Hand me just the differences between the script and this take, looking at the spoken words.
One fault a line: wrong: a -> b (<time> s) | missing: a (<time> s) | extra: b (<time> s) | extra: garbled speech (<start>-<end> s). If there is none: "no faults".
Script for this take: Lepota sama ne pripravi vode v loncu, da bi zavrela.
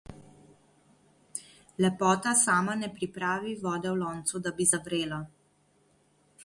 no faults